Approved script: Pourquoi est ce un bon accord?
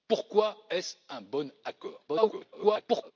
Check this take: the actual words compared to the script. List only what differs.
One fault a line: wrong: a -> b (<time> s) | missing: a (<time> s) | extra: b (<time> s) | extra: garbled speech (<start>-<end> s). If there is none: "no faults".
extra: garbled speech (2.1-3.1 s)